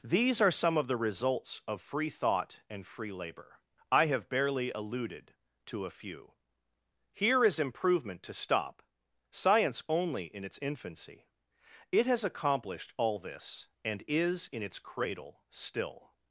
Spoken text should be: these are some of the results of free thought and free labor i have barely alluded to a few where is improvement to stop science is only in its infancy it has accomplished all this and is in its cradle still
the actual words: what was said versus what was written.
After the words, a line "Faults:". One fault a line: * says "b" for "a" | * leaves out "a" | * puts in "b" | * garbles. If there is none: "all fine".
these are some of the results of free thought and free labor i have barely alluded to a few here is improvement to stop science only in its infancy it has accomplished all this and is in its cradle still
Faults:
* says "here" for "where"
* leaves out "is"